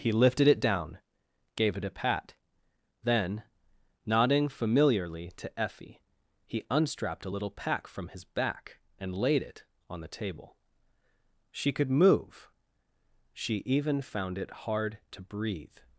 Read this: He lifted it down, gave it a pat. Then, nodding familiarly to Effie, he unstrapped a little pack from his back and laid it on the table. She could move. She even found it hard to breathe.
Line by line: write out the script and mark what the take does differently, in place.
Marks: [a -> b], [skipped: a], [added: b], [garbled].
He lifted it down, gave it a pat. Then, nodding familiarly to Effie, he unstrapped a little pack from his back and laid it on the table. She could move. She even found it hard to breathe.